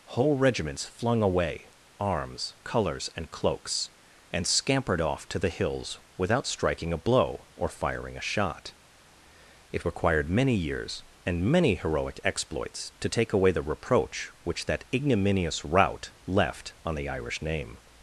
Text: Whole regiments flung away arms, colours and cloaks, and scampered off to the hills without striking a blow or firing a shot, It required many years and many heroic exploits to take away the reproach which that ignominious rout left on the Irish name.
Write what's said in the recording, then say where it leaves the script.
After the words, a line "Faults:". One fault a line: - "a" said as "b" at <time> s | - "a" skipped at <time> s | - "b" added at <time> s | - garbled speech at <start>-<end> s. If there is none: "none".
Whole regiments flung away arms, colours and cloaks, and scampered off to the hills without striking a blow or firing a shot, It required many years and many heroic exploits to take away the reproach which that ignominious rout left on the Irish name.
Faults:
none